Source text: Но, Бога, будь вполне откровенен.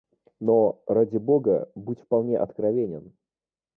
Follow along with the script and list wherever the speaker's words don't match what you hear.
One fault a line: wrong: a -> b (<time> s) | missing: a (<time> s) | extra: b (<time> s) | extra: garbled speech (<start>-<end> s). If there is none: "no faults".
extra: ради (0.9 s)